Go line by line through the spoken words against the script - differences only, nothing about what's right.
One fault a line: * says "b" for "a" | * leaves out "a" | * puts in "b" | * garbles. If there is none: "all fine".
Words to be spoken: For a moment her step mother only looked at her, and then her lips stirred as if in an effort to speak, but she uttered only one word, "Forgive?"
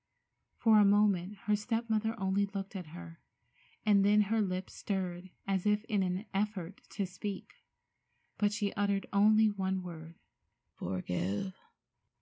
all fine